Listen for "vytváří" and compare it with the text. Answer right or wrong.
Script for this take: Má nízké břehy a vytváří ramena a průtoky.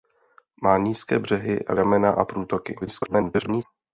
wrong